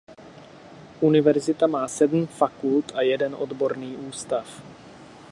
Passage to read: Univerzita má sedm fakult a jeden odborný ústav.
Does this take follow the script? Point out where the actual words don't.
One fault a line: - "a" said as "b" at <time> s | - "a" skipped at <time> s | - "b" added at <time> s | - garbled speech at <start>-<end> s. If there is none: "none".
none